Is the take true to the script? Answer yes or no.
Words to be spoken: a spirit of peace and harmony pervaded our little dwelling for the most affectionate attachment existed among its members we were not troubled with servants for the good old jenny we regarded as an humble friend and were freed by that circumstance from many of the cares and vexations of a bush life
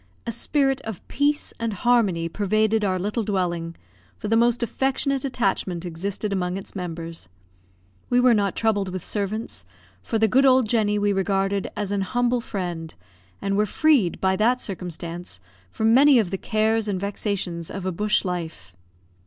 yes